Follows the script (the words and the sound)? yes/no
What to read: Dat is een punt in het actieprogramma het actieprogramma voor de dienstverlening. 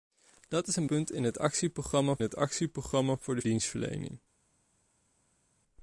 yes